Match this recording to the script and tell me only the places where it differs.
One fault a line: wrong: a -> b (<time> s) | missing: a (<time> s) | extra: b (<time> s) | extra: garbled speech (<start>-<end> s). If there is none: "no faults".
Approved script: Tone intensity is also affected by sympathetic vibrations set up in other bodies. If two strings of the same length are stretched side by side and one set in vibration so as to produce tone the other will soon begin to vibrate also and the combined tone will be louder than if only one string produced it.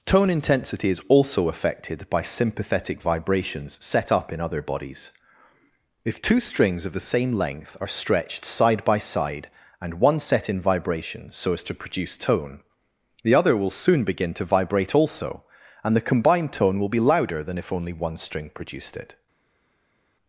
no faults